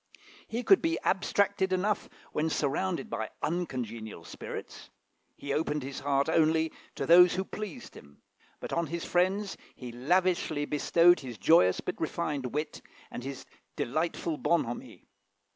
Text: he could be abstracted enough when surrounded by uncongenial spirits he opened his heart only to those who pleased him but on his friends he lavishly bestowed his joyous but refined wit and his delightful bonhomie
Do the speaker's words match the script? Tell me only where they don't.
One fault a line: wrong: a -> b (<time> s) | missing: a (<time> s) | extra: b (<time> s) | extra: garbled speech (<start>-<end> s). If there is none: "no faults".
no faults